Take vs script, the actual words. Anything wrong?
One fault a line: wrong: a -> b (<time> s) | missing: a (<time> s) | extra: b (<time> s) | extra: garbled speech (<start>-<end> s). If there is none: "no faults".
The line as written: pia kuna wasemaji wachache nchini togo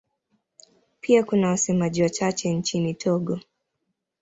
no faults